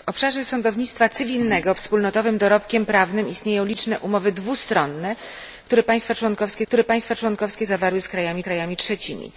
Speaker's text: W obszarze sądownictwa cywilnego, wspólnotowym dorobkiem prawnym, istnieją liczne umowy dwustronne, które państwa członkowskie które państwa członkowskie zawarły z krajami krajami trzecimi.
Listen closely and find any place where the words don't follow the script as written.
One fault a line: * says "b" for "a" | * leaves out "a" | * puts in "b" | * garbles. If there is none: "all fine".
all fine